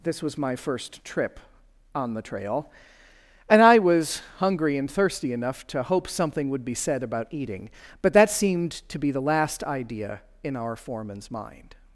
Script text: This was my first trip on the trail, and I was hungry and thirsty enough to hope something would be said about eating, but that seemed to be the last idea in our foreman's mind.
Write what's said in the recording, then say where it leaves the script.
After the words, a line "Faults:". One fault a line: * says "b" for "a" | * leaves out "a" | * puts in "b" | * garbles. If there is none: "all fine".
This was my first trip on the trail, and I was hungry and thirsty enough to hope something would be said about eating, but that seemed to be the last idea in our foreman's mind.
Faults:
all fine